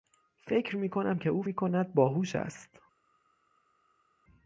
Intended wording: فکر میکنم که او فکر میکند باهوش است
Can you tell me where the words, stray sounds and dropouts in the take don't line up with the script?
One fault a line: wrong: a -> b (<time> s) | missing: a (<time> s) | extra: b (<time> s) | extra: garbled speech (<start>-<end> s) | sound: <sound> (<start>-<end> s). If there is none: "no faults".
missing: فکر (1.4 s)